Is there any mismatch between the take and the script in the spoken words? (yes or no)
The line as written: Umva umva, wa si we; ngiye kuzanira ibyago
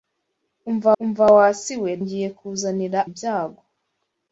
no